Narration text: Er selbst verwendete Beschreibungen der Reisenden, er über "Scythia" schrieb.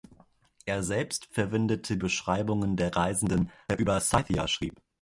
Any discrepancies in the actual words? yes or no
no